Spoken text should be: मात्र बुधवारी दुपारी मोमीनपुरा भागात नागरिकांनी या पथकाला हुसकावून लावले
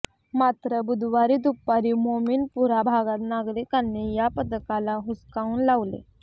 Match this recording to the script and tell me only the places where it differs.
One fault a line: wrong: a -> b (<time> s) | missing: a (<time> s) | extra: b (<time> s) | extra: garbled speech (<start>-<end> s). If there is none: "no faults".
no faults